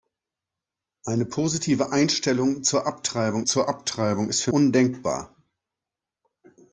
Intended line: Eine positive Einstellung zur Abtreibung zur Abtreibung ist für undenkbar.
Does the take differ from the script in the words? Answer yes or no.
no